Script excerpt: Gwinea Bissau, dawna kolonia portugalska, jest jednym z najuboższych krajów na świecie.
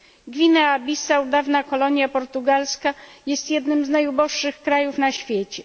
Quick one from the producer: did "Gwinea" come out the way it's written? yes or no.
yes